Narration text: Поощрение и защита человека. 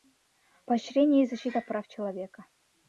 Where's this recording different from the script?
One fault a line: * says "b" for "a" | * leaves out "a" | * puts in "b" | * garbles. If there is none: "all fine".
* puts in "прав"